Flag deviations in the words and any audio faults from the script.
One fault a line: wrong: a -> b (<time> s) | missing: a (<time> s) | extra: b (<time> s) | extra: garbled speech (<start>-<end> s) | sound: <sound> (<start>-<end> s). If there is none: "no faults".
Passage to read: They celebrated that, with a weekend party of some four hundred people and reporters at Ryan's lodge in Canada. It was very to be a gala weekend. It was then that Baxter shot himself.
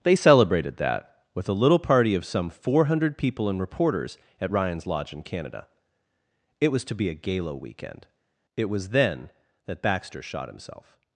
wrong: weekend -> little (1.5 s)
missing: very (6.8 s)